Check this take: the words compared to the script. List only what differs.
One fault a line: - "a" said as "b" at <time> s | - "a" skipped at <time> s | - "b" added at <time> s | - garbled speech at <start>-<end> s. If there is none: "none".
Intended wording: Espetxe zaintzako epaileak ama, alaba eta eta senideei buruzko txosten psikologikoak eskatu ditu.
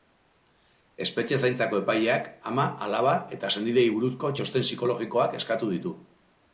- "eta" skipped at 3.5 s